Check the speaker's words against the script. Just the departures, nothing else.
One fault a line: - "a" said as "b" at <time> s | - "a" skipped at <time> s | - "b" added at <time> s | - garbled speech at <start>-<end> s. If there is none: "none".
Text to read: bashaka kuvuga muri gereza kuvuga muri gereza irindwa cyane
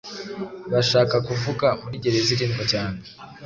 - "kuvuga muri gereza" skipped at 2.3 s